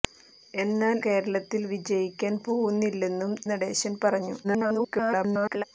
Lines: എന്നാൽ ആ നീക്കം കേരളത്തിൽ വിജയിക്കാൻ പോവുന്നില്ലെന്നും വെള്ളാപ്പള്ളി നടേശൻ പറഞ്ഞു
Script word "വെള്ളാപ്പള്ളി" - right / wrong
wrong